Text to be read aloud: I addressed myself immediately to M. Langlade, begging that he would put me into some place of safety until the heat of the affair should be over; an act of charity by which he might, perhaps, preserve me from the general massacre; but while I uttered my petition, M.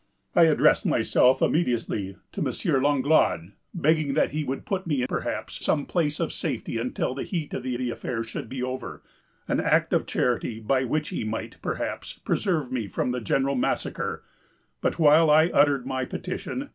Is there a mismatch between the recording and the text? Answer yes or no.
yes